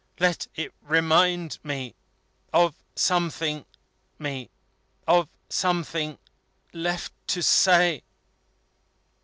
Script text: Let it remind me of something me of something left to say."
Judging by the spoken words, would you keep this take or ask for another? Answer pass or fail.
pass